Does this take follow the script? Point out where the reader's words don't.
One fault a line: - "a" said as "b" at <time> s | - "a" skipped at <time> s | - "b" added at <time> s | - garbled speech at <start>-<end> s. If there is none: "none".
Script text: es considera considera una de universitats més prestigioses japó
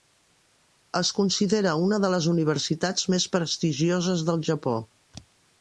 - "considera" skipped at 1.8 s
- "les" added at 2.1 s
- "del" added at 4.3 s